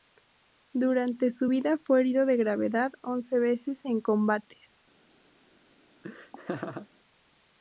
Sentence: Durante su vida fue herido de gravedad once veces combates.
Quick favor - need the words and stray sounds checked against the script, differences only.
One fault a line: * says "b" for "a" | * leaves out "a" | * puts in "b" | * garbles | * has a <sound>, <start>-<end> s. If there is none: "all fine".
* puts in "en"
* has a laugh, 6.0-6.9 s